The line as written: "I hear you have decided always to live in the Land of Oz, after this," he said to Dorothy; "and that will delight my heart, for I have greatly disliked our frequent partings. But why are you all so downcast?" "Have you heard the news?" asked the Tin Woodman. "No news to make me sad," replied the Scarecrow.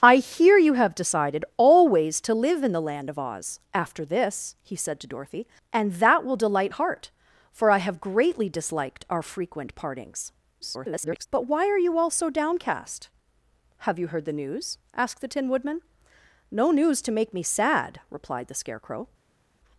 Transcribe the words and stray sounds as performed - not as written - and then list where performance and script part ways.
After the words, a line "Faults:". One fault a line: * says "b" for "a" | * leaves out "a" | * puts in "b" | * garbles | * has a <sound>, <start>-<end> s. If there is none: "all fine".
"I hear you have decided always to live in the Land of Oz, after this," he said to Dorothy; "and that will delight heart, for I have greatly disliked our frequent partings. [garbled] But why are you all so downcast?" "Have you heard the news?" asked the Tin Woodman. "No news to make me sad," replied the Scarecrow.
Faults:
* leaves out "my"
* garbles